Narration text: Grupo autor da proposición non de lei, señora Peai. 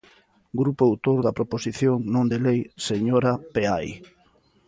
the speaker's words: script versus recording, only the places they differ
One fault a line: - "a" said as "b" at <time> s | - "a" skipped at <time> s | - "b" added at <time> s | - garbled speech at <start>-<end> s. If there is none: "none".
none